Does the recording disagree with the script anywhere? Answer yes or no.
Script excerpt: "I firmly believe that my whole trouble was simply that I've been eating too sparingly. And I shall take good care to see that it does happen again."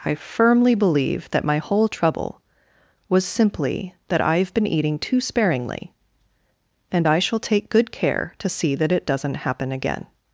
yes